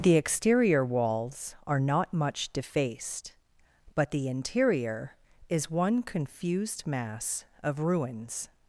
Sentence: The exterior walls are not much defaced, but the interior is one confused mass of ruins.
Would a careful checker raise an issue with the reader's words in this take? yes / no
no